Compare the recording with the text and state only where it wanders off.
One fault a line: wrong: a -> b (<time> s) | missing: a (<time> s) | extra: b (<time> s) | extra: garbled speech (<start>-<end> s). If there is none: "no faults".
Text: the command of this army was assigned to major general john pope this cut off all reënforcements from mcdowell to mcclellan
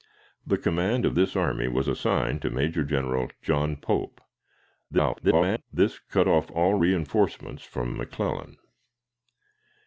extra: garbled speech (4.9-5.6 s)
missing: mcdowell to (7.9 s)